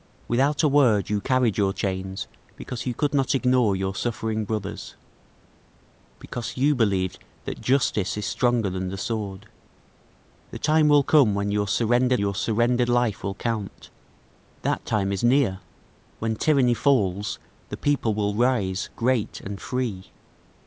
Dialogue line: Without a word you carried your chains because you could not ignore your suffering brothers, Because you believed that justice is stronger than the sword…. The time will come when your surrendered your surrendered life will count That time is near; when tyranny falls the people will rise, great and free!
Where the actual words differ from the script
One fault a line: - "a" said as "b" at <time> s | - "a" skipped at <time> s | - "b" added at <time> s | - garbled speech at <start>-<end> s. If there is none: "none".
none